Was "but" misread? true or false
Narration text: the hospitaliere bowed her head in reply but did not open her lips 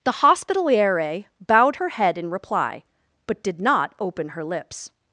false